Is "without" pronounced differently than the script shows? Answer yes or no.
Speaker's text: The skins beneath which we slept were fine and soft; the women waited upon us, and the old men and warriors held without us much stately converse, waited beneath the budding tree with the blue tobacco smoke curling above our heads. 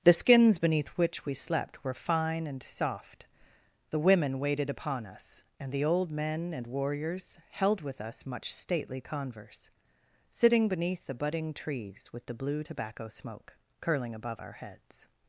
yes